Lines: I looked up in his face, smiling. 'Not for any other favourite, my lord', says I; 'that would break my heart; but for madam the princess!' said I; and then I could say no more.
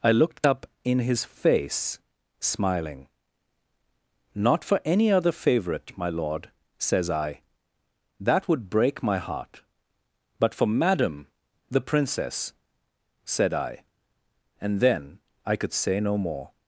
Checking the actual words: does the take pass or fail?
pass